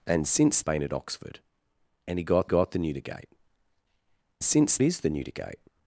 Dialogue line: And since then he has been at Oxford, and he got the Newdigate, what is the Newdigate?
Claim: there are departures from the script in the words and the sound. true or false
true